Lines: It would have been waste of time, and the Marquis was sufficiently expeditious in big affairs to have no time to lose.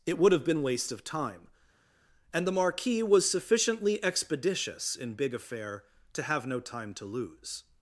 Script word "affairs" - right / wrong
wrong